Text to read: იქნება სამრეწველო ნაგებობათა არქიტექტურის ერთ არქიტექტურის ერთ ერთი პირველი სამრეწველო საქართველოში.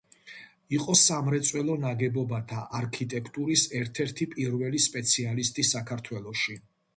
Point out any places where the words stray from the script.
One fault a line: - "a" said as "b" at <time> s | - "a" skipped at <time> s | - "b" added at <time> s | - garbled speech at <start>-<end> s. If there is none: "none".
- "იქნება" said as "იყო" at 0.8 s
- "არქიტექტურის ერთ" skipped at 4.0 s
- "სამრეწველო" said as "სპეციალისტი" at 4.9 s